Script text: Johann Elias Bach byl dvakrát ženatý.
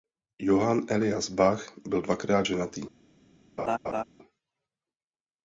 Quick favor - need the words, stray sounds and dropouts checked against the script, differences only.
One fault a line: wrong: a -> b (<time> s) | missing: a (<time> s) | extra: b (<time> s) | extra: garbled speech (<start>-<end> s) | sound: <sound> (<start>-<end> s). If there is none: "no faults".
sound: laugh (3.6-4.0 s)